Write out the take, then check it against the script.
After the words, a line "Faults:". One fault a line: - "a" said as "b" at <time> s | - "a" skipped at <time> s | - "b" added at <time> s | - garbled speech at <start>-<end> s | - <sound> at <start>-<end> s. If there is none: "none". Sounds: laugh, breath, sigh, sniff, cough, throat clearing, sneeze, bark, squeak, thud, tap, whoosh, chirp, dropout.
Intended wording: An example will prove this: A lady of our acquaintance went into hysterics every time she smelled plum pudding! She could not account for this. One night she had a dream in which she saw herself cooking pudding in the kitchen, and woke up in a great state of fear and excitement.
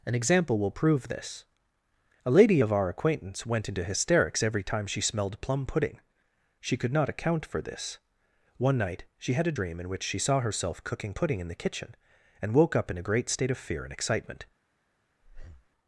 An example will prove this: A lady of our acquaintance went into hysterics every time she smelled plum pudding! She could not account for this. One night she had a dream in which she saw herself cooking pudding in the kitchen, and woke up in a great state of fear and excitement.
Faults:
- breath at 15.2-15.7 s